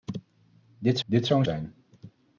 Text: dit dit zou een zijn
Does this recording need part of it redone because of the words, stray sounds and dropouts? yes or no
no